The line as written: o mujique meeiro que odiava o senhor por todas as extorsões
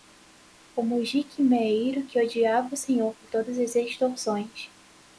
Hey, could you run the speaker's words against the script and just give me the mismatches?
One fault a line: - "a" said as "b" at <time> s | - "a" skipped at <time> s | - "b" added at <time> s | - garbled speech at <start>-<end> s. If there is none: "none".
none